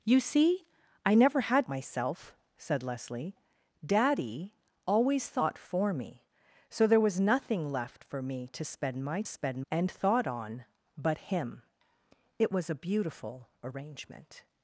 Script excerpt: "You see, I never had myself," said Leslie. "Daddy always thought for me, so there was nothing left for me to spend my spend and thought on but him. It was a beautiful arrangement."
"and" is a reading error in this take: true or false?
false